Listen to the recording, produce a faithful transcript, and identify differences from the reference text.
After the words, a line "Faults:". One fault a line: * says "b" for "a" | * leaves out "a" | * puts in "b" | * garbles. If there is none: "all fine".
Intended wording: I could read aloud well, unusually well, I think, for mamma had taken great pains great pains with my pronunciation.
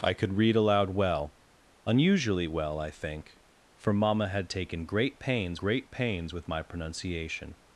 I could read aloud well, unusually well, I think, for mamma had taken great pains great pains with my pronunciation.
Faults:
all fine